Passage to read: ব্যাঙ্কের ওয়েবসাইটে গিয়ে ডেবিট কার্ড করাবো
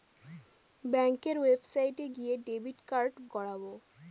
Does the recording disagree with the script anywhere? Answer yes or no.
no